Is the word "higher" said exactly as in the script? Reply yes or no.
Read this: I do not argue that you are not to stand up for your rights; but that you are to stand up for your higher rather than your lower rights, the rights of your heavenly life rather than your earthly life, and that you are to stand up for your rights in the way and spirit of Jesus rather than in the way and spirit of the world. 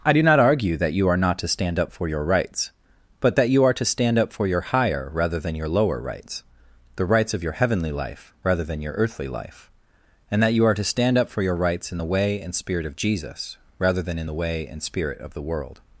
yes